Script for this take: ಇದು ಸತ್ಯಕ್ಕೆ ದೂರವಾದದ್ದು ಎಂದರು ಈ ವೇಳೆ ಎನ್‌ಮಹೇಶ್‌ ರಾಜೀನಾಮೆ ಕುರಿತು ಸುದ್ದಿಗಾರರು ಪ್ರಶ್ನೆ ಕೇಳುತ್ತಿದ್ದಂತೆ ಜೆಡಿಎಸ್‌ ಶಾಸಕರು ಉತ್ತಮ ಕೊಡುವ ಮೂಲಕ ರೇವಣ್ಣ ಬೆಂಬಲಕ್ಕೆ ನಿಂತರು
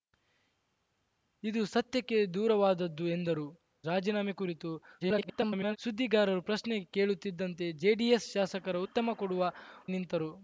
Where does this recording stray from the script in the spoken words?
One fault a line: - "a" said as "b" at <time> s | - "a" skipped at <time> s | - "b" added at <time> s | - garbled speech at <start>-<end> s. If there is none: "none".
- "ಈ ವೇಳೆ ಎನ್‌ಮಹೇಶ್" skipped at 3.5 s
- garbled speech at 5.0-5.8 s
- "ಮೂಲಕ ರೇವಣ್ಣ ಬೆಂಬಲಕ್ಕೆ" skipped at 9.4 s